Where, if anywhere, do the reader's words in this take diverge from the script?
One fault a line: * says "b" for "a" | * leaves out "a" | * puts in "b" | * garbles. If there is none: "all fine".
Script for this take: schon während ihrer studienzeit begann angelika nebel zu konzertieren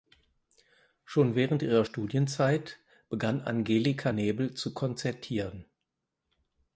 all fine